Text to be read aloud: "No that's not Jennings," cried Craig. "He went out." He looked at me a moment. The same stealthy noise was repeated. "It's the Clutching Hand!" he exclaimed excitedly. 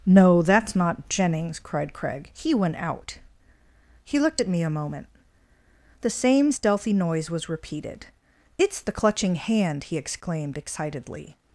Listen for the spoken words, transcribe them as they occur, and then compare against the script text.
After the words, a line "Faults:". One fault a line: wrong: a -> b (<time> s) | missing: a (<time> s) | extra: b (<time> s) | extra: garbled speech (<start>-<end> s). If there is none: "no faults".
"No that's not Jennings," cried Craig. "He went out." He looked at me a moment. The same stealthy noise was repeated. "It's the Clutching Hand!" he exclaimed excitedly.
Faults:
no faults